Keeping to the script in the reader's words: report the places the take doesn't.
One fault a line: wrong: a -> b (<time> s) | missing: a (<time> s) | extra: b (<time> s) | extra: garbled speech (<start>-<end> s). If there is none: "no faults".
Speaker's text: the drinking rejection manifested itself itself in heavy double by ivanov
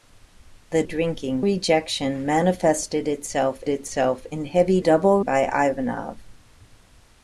no faults